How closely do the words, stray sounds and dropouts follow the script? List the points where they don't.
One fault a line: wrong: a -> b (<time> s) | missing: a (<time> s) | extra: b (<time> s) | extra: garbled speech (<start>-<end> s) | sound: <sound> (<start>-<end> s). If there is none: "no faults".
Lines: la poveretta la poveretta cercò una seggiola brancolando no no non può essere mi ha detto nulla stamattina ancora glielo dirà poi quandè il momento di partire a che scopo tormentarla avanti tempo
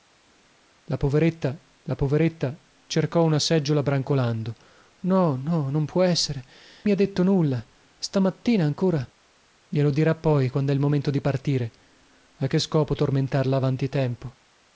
no faults